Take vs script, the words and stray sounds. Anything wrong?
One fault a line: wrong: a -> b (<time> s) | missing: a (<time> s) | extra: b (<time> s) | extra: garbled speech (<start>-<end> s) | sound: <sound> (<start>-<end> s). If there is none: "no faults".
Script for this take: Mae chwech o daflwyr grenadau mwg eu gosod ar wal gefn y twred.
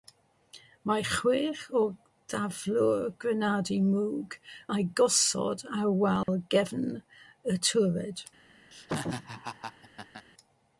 sound: dropout (6.2-6.3 s)
sound: laugh (8.7-10.3 s)